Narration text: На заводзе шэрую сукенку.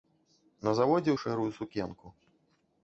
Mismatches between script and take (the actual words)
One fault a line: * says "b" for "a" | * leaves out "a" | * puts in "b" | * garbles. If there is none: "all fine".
all fine